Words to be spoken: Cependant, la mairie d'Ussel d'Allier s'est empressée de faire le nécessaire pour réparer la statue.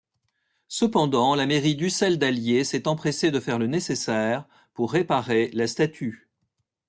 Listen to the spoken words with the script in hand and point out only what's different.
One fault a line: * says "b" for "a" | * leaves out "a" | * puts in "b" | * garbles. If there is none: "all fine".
all fine